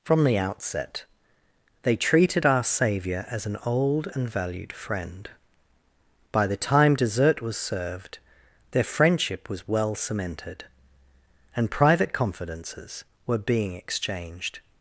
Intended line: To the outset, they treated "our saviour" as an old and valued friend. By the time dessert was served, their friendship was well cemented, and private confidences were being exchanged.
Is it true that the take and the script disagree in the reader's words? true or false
true